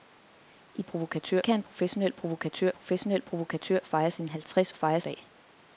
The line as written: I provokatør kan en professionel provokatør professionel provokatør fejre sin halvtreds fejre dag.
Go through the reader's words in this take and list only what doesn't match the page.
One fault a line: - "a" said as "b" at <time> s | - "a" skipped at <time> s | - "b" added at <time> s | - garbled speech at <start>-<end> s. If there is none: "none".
none